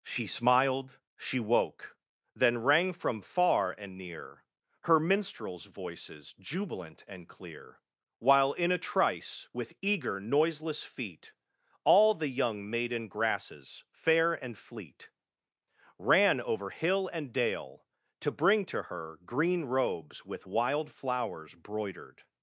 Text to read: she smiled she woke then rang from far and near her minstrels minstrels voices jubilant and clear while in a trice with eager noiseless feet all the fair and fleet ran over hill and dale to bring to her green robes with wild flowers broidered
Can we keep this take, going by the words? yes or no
no